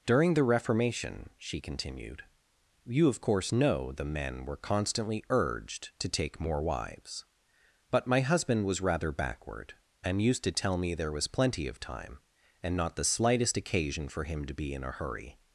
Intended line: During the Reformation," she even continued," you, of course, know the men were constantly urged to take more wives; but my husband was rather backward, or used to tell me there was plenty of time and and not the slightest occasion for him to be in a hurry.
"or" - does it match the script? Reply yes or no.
no